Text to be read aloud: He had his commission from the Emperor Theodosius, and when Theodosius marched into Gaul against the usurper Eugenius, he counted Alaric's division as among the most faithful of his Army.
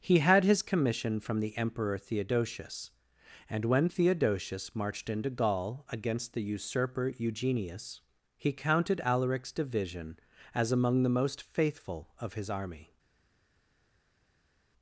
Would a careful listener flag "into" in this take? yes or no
no